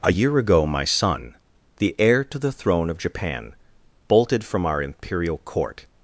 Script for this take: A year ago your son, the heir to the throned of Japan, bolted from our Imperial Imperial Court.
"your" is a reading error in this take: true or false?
true